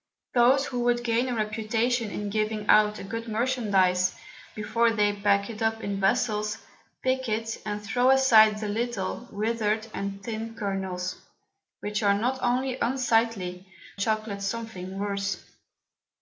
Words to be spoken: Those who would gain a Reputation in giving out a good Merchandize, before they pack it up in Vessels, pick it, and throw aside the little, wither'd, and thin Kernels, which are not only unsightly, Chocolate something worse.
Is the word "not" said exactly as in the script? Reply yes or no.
yes